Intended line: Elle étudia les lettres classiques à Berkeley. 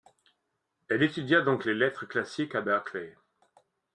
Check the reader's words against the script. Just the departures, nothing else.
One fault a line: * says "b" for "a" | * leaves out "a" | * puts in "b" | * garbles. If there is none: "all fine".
* puts in "donc"